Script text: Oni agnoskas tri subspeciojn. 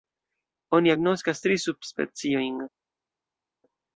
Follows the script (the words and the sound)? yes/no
yes